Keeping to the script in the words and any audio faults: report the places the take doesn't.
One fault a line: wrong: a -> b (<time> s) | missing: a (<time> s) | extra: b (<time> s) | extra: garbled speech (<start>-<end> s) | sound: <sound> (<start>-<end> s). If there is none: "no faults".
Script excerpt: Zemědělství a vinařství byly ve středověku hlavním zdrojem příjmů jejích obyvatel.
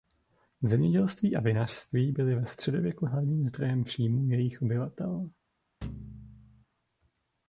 sound: thud (5.8-6.6 s)